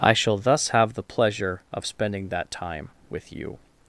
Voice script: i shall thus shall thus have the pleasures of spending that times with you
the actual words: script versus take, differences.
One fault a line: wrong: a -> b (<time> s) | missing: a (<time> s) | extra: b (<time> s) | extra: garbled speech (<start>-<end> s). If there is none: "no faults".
missing: shall thus (0.7 s)
wrong: pleasures -> pleasure (1.0 s)
wrong: times -> time (2.5 s)